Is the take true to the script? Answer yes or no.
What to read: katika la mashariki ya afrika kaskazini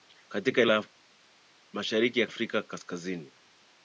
yes